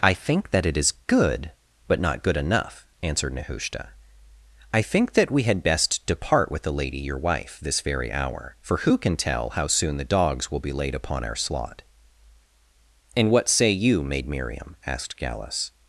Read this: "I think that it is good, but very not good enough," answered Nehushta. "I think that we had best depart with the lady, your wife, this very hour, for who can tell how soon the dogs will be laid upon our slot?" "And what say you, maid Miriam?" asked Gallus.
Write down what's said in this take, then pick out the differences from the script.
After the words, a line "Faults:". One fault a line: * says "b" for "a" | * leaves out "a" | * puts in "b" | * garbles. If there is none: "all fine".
"I think that it is good, but not good enough," answered Nehushta. "I think that we had best depart with the lady, your wife, this very hour, for who can tell how soon the dogs will be laid upon our slot?" "And what say you, maid Miriam?" asked Gallus.
Faults:
* leaves out "very"